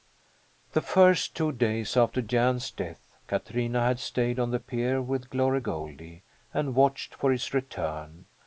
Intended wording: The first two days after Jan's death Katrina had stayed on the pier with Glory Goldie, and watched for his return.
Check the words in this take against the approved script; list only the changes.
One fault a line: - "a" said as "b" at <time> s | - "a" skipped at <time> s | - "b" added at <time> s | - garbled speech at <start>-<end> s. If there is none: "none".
none